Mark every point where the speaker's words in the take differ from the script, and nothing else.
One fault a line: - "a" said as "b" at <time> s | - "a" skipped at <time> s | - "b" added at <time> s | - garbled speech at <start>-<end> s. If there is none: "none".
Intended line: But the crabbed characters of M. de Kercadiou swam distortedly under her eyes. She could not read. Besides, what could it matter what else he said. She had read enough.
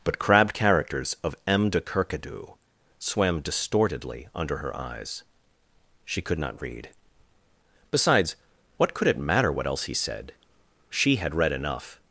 - "the" skipped at 0.2 s